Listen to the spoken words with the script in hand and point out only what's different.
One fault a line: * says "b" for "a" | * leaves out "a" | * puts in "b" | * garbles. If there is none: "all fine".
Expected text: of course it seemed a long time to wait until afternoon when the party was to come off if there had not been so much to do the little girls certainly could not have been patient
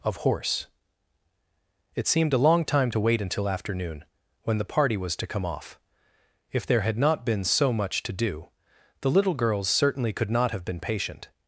* says "horse" for "course"